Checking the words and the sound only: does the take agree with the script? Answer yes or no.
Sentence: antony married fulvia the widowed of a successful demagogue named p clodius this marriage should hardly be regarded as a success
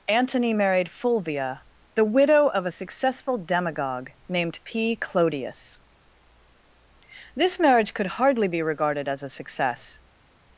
no